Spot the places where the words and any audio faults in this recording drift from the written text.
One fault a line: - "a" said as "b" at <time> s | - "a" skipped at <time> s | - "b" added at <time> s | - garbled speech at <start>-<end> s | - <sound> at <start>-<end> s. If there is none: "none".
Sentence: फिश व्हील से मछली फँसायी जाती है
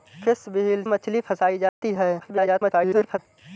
- "से" skipped at 0.8 s
- dropout at 1.7-1.8 s
- garbled speech at 2.2-3.2 s